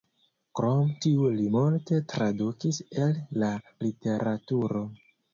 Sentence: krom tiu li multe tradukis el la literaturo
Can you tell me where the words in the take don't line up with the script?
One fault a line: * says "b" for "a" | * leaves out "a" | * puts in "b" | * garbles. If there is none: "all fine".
all fine